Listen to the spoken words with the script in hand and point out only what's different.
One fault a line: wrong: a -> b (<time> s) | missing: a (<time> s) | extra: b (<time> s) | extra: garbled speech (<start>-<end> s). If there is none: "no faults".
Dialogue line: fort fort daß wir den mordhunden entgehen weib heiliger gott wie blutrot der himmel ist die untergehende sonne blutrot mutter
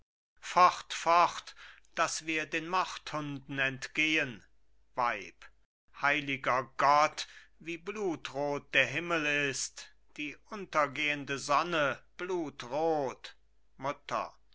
no faults